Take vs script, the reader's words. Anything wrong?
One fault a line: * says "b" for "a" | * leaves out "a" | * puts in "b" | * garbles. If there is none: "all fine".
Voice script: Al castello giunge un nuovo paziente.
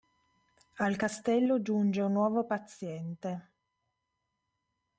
all fine